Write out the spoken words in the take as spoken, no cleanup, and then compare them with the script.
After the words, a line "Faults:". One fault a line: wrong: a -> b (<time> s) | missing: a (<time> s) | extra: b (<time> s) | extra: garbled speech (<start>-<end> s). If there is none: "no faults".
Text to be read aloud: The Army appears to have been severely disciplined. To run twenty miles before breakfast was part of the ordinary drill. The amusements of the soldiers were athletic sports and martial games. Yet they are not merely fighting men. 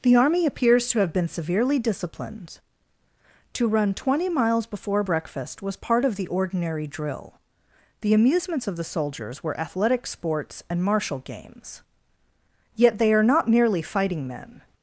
The Army appears to have been severely disciplined. To run twenty miles before breakfast was part of the ordinary drill. The amusements of the soldiers were athletic sports and martial games. Yet they are not merely fighting men.
Faults:
no faults